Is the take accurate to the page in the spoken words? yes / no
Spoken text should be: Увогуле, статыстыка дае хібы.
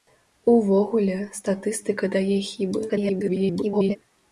no